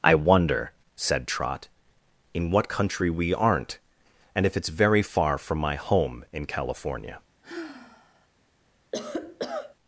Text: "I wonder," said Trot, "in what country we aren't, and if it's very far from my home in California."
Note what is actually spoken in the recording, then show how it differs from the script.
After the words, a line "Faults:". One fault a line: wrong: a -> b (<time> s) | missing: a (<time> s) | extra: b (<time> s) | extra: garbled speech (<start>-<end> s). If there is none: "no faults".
"I wonder," said Trot, "in what country we aren't, and if it's very far from my home in California."
Faults:
no faults